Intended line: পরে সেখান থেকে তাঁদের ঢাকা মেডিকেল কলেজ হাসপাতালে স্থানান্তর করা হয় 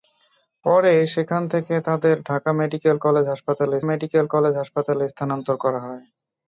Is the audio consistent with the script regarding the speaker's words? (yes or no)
no